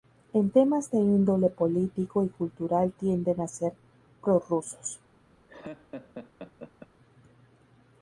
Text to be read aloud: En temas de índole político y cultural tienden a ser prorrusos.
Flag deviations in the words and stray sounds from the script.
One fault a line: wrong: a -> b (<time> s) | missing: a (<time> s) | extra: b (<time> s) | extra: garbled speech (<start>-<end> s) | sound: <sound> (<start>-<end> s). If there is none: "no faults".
sound: laugh (5.5-6.9 s)